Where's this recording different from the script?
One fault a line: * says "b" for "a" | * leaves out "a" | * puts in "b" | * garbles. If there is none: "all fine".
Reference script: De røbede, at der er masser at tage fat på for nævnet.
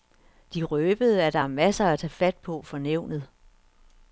all fine